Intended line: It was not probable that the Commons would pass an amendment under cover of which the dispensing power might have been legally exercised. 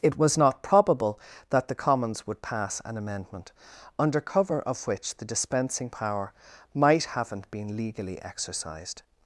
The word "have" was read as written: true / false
false